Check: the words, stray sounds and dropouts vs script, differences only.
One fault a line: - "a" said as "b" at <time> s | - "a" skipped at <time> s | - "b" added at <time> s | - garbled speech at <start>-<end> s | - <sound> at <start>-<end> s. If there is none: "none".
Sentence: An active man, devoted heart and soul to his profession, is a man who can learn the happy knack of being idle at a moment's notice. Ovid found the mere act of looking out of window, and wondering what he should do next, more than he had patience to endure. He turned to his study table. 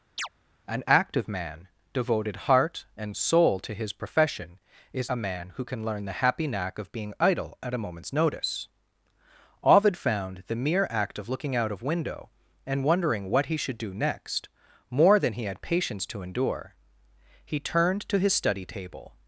- chirp at 0.2-0.3 s